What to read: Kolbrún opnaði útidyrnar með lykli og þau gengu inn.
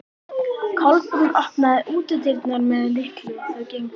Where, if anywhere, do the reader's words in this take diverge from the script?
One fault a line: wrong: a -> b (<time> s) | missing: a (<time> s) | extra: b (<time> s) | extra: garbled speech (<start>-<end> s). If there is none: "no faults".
no faults